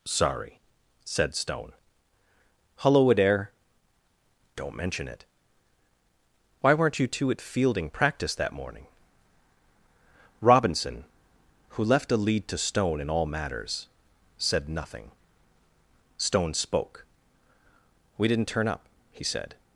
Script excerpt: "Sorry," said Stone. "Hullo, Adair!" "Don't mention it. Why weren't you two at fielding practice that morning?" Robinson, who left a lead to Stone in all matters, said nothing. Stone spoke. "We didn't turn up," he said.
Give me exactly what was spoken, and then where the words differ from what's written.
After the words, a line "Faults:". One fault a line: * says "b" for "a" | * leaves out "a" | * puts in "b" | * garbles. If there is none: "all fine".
"Sorry," said Stone. "Hullo, Adair!" "Don't mention it. Why weren't you two at fielding practice that morning?" Robinson, who left a lead to Stone in all matters, said nothing. Stone spoke. "We didn't turn up," he said.
Faults:
all fine